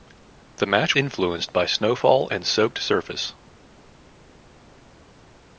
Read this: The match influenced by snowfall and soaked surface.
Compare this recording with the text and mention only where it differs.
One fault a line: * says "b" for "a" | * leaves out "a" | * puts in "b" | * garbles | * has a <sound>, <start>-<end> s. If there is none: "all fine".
all fine